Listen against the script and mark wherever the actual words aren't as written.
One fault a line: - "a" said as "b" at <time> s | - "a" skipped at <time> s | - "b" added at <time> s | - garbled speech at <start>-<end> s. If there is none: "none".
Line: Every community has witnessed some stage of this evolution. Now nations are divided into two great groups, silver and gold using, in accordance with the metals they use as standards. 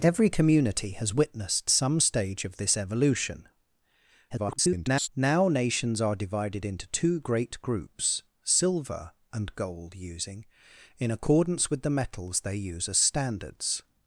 - garbled speech at 4.3-5.1 s